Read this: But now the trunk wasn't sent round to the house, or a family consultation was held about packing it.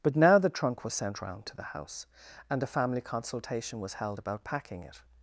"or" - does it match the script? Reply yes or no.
no